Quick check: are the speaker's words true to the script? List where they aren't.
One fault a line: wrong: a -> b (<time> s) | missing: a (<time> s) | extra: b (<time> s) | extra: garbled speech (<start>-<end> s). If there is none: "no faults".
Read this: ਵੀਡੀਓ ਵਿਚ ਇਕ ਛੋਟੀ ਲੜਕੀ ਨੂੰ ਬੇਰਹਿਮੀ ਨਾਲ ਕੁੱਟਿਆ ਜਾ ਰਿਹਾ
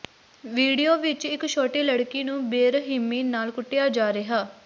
no faults